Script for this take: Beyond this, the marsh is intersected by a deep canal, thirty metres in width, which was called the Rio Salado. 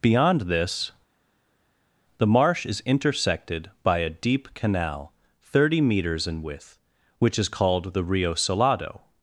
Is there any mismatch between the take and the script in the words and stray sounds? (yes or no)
yes